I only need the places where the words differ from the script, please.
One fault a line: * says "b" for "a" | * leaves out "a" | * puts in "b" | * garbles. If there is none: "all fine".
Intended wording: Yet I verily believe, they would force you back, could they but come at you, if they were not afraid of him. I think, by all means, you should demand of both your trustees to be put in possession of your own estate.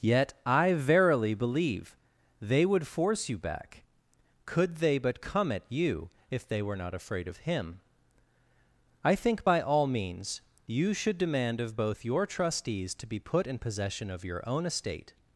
all fine